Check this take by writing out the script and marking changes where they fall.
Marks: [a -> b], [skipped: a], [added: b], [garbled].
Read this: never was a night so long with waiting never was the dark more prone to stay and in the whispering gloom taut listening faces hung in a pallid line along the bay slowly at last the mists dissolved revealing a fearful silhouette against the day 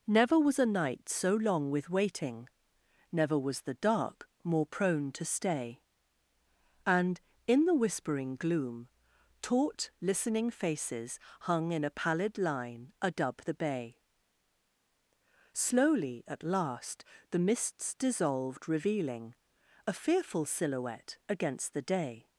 never was a night so long with waiting never was the dark more prone to stay and in the whispering gloom taut listening faces hung in a pallid line [along -> adub] the bay slowly at last the mists dissolved revealing a fearful silhouette against the day